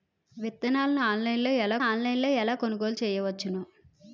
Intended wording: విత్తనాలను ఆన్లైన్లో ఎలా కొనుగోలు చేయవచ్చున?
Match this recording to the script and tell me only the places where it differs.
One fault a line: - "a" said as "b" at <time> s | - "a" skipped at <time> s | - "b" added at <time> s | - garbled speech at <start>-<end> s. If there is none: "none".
- "ఆన్లైన్లో ఎలా" added at 1.8 s